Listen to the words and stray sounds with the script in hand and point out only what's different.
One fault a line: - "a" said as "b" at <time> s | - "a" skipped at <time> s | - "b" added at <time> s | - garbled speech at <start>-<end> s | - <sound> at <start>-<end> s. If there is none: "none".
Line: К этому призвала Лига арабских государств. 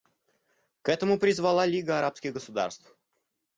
none